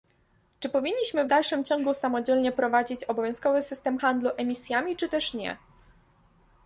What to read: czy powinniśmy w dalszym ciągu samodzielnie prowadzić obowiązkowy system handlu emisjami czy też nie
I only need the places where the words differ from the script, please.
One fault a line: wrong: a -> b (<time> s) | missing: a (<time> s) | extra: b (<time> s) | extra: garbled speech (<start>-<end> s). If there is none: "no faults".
no faults